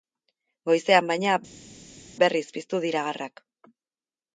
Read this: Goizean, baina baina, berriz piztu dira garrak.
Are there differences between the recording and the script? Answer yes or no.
yes